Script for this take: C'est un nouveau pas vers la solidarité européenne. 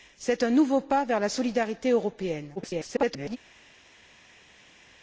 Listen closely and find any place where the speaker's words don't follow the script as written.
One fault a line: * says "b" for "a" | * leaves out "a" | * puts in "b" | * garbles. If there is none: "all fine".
* garbles